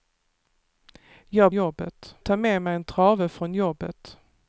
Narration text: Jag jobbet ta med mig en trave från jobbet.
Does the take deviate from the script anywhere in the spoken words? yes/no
no